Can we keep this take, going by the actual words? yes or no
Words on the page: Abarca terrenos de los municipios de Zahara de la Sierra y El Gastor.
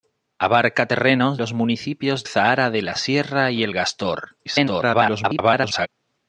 no